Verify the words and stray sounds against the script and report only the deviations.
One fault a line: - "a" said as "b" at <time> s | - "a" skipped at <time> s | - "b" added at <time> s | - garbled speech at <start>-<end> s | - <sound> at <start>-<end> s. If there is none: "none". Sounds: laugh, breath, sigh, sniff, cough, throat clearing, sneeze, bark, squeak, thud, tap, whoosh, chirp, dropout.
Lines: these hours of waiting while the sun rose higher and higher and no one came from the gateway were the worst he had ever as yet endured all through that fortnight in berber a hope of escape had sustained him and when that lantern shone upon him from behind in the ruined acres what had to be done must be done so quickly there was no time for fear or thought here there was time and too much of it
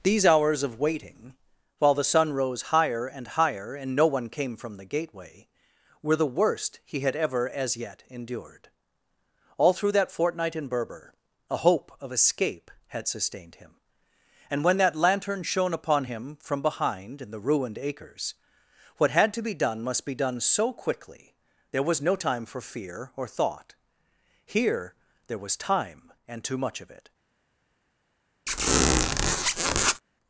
- squeak at 28.5-30.0 s